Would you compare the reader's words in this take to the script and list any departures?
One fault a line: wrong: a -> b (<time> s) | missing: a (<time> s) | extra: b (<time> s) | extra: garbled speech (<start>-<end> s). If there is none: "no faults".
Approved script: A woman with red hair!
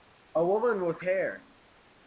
missing: red (1.0 s)